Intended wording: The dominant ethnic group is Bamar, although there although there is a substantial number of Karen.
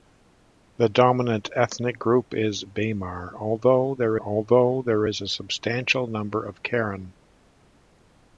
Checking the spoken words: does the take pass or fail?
pass